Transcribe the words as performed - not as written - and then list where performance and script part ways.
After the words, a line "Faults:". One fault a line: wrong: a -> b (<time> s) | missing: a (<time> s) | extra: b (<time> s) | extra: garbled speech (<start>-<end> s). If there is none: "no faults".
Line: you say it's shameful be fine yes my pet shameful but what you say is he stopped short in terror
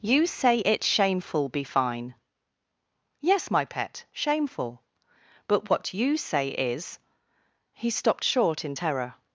you say it's shameful be fine yes my pet shameful but what you say is he stopped short in terror
Faults:
no faults